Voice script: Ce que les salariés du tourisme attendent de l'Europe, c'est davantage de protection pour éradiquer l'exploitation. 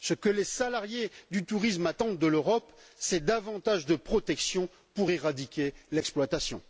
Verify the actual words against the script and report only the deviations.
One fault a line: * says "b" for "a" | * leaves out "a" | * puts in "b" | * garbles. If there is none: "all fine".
all fine